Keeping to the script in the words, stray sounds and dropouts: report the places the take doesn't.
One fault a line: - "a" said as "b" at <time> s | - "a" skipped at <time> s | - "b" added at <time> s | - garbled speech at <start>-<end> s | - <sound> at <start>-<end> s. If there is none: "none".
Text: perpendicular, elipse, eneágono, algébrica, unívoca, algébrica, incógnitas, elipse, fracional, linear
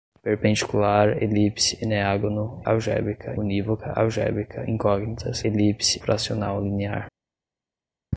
none